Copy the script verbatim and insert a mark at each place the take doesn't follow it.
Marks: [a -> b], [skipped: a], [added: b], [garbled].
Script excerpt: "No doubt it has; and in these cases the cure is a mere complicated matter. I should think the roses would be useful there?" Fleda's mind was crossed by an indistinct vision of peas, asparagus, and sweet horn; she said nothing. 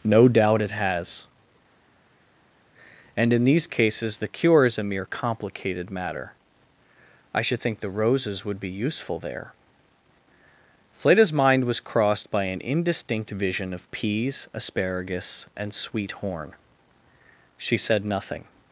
"No doubt it has; and in these cases the cure is a mere complicated matter. I should think the roses would be useful there?" Fleda's mind was crossed by an indistinct vision of peas, asparagus, and sweet horn; she said nothing.